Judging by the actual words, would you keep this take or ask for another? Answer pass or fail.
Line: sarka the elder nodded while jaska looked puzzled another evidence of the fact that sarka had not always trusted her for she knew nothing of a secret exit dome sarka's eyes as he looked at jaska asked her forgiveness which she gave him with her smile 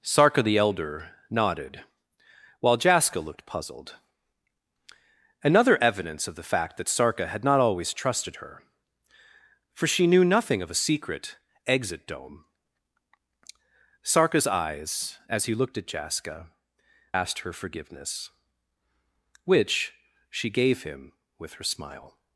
pass